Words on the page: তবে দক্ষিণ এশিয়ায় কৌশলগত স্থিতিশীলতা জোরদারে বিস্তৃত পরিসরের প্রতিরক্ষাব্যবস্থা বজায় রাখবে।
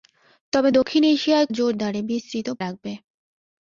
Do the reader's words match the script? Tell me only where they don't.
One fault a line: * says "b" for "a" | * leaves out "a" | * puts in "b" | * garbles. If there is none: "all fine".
* leaves out "কৌশলগত স্থিতিশীলতা"
* leaves out "পরিসরের প্রতিরক্ষাব্যবস্থা বজায়"